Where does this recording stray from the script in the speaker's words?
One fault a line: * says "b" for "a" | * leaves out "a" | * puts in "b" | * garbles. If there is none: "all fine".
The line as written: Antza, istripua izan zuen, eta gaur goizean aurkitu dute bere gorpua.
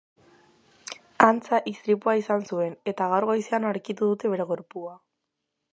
all fine